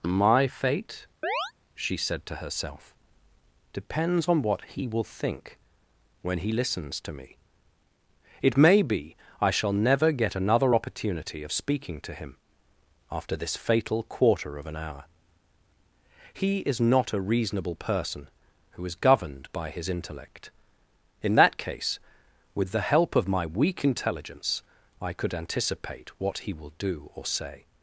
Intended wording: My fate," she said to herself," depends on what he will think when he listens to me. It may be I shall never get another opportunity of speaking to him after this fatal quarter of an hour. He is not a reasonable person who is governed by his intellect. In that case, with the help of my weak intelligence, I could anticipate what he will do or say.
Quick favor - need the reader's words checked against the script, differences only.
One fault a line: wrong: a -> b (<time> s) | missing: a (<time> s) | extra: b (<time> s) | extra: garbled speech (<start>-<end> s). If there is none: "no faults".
no faults